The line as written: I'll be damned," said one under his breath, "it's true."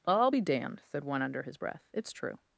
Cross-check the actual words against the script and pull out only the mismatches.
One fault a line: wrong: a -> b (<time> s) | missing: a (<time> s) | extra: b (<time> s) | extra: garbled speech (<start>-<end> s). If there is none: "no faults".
no faults